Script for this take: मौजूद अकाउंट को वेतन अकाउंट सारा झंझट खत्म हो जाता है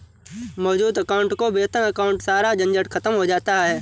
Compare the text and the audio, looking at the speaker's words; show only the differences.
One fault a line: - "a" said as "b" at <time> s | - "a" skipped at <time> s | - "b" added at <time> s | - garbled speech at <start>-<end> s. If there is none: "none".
none